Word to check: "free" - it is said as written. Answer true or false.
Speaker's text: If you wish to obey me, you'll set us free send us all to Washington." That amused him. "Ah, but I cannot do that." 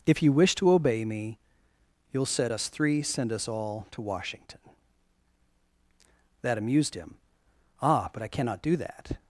false